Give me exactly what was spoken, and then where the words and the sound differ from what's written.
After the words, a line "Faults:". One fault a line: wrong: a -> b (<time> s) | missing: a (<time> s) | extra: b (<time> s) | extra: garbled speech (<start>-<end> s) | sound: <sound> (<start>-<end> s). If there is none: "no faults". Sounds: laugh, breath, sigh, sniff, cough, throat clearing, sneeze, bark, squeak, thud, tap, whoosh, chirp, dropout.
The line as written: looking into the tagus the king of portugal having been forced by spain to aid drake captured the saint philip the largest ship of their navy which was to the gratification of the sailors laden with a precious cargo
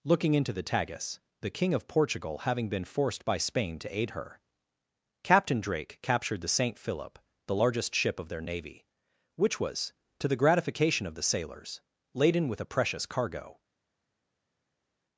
looking into the tagus the king of portugal having been forced by spain to aid her captain drake captured the saint philip the largest ship of their navy which was to the gratification of the sailors laden with a precious cargo
Faults:
extra: her captain (4.1 s)